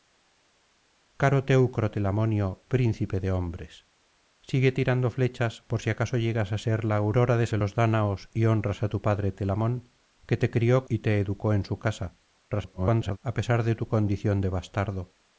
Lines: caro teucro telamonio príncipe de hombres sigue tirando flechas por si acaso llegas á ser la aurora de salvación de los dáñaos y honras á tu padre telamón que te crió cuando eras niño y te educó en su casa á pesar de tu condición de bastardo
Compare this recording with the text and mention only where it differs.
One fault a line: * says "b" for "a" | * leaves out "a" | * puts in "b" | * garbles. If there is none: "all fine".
* leaves out "salvación"
* leaves out "cuando eras niño"
* garbles